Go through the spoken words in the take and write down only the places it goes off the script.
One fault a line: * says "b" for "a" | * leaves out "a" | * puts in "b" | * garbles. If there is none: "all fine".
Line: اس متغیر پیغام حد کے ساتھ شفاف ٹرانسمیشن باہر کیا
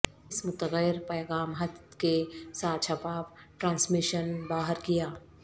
all fine